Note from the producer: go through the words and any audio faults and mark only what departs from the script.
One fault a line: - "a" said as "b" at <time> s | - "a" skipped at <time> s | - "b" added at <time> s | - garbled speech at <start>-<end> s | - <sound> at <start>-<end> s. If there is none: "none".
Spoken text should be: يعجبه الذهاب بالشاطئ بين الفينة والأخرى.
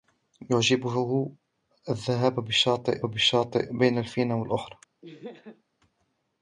- "بالشاطئ" added at 3.0 s
- laugh at 5.0-5.6 s